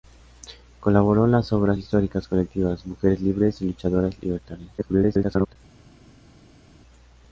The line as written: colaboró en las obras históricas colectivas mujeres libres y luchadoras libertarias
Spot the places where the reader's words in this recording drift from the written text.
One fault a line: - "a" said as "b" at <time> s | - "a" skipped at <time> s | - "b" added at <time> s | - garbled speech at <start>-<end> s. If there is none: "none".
- garbled speech at 4.8-5.6 s